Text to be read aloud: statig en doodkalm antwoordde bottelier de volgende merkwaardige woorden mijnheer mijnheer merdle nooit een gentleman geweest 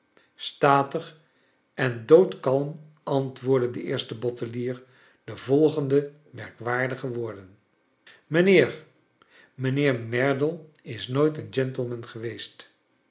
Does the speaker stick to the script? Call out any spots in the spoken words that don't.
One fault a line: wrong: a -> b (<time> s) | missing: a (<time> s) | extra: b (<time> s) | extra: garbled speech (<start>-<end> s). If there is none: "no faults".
extra: de eerste (3.7 s)
extra: is (10.8 s)